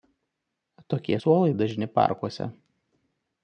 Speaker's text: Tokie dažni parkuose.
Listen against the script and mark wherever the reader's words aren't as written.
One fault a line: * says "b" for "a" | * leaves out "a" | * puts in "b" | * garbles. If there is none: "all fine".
* puts in "suolai"